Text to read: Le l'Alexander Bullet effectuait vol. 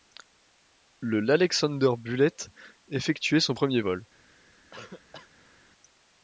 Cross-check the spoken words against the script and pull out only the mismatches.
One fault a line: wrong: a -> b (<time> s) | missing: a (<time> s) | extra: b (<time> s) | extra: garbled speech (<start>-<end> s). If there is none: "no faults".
extra: son premier (3.4 s)